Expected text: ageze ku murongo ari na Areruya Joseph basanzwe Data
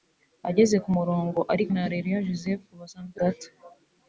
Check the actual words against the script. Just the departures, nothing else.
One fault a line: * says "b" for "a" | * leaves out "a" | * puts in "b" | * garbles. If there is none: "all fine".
all fine